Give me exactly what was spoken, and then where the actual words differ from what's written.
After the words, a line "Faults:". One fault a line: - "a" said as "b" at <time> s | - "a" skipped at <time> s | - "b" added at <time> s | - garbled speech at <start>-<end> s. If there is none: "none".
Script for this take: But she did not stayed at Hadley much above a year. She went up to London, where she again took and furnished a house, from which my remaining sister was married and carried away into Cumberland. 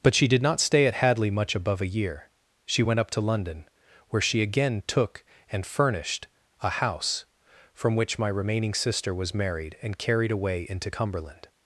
But she did not stay at Hadley much above a year. She went up to London, where she again took and furnished a house, from which my remaining sister was married and carried away into Cumberland.
Faults:
- "stayed" said as "stay" at 0.6 s